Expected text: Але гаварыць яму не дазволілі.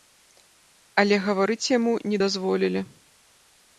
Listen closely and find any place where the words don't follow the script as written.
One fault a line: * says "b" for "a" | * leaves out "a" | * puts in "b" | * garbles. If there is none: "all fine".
all fine